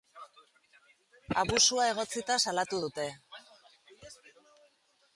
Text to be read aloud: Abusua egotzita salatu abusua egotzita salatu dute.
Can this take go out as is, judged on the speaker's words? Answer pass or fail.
fail